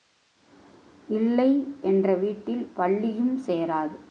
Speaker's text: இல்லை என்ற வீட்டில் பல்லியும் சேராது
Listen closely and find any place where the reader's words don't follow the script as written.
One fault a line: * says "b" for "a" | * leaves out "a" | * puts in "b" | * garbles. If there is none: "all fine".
all fine